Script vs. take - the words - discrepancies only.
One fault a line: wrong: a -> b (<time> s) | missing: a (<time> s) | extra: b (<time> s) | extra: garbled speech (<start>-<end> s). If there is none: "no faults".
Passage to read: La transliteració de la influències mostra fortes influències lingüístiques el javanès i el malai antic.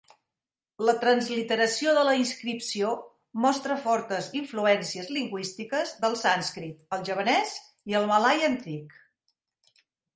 wrong: influències -> inscripció (2.2 s)
extra: del sànscrit (6.1 s)